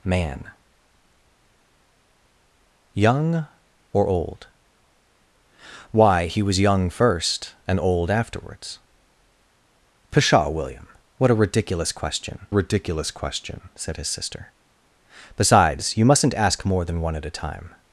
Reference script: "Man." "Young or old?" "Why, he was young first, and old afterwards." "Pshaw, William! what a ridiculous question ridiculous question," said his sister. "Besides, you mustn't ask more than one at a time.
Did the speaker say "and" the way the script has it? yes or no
yes